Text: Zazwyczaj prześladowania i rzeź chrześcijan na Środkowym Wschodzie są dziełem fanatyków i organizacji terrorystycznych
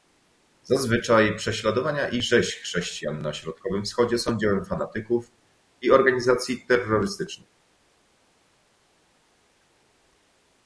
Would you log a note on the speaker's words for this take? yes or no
no